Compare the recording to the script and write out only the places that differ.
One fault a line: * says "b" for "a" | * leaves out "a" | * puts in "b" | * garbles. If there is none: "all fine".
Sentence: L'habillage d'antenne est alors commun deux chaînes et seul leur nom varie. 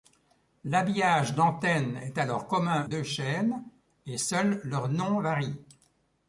all fine